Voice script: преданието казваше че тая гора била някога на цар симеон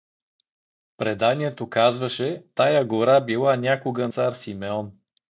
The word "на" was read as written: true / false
false